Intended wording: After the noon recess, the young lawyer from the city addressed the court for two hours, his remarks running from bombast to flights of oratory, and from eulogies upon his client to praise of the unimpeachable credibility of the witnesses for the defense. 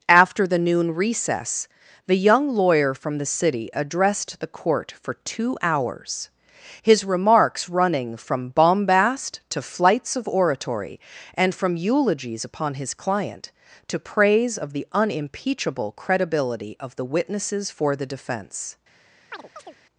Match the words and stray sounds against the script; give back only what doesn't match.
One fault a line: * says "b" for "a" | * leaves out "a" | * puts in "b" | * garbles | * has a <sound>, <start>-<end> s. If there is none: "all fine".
* has a chirp, 19.3-19.8 s